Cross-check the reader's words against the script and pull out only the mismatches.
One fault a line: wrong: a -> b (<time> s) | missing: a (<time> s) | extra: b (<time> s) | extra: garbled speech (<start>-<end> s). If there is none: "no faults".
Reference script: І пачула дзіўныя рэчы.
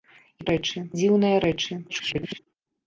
wrong: пачула -> рэчы (0.5 s)
extra: garbled speech (1.9-2.4 s)